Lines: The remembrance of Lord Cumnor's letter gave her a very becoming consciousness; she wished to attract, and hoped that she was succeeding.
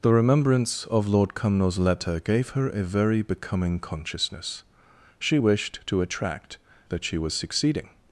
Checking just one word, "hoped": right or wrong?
wrong